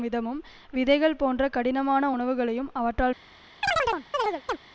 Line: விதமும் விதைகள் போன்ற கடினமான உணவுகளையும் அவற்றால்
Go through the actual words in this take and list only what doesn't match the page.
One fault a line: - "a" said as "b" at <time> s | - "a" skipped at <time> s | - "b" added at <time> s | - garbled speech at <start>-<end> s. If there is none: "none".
none